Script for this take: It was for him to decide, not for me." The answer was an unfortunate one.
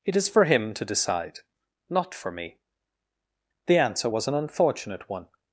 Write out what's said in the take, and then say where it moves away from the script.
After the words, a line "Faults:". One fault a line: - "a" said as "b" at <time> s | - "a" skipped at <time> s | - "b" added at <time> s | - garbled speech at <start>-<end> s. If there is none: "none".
It is for him to decide, not for me." The answer was an unfortunate one.
Faults:
- "was" said as "is" at 0.1 s